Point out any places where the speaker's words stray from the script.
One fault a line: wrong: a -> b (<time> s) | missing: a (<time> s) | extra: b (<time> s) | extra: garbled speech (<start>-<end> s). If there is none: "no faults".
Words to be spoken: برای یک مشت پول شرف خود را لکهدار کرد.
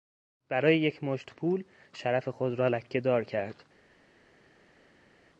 no faults